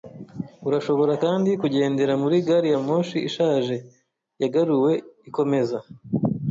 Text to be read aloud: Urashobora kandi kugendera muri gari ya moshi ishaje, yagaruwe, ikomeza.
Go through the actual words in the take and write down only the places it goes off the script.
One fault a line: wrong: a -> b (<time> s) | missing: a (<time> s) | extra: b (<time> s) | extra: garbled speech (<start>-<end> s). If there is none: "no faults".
no faults